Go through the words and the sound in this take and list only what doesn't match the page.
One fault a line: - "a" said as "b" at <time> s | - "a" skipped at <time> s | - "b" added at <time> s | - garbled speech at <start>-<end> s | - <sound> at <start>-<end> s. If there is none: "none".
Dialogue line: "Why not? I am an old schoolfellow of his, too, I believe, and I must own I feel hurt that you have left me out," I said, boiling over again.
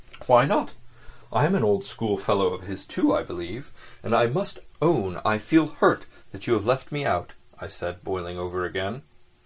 none